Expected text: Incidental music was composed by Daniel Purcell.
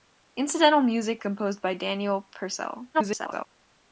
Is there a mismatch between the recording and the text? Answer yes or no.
yes